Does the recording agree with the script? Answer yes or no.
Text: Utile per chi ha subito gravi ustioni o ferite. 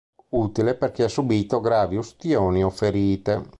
yes